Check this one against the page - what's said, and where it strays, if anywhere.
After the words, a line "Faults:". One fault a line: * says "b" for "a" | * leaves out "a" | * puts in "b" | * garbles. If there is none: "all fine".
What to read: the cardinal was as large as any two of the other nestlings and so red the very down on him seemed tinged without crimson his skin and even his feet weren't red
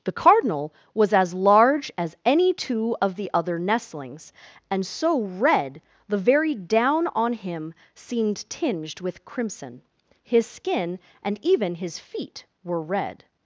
the cardinal was as large as any two of the other nestlings and so red the very down on him seemed tinged with crimson his skin and even his feet were red
Faults:
* says "with" for "without"
* says "were" for "weren't"